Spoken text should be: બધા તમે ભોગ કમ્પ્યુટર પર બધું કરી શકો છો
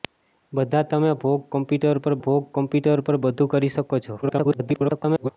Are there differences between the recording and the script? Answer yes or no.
yes